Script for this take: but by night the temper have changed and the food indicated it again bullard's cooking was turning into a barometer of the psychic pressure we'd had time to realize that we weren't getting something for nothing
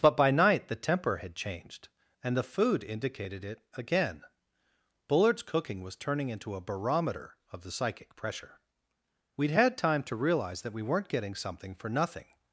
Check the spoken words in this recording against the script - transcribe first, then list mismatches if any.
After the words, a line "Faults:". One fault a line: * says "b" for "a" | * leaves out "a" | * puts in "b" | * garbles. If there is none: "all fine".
but by night the temper had changed and the food indicated it again bullard's cooking was turning into a barometer of the psychic pressure we'd had time to realize that we weren't getting something for nothing
Faults:
* says "had" for "have"